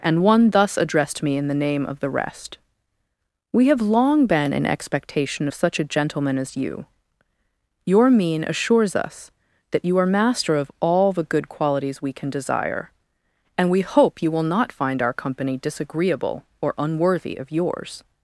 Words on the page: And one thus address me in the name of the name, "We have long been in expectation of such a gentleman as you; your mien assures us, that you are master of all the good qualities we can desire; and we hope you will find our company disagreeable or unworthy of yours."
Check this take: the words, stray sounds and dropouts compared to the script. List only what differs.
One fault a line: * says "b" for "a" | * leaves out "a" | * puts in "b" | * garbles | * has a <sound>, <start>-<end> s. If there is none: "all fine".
* says "addressed" for "address"
* says "rest" for "name"
* puts in "not"